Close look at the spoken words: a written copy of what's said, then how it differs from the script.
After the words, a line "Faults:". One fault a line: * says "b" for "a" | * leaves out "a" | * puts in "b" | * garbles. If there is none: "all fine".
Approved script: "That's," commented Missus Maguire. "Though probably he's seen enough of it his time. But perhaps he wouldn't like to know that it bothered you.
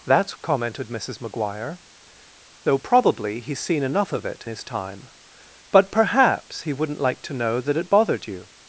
"That's," commented Missus Maguire. "Though probably he's seen enough of it his time. But perhaps he wouldn't like to know that it bothered you.
Faults:
all fine